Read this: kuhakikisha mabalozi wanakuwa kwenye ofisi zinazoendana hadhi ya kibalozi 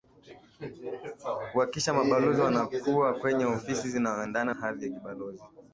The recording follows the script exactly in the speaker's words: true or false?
true